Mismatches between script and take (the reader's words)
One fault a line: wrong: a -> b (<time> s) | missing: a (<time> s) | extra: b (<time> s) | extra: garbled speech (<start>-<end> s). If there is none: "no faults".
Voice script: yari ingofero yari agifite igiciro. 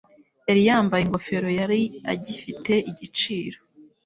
extra: yambaye (0.7 s)